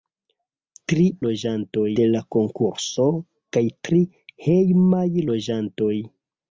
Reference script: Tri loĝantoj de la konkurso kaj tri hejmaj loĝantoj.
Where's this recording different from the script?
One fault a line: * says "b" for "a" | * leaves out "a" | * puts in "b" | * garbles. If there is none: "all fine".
all fine